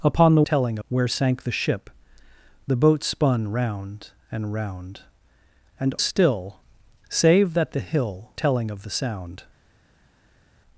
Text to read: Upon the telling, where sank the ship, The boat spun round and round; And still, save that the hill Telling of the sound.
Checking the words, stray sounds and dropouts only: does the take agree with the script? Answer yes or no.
yes